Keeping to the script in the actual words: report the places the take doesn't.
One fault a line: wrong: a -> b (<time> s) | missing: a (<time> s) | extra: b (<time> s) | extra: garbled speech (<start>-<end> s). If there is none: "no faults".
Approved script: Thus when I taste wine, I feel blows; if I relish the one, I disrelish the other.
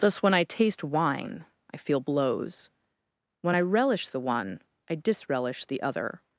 wrong: if -> when (3.4 s)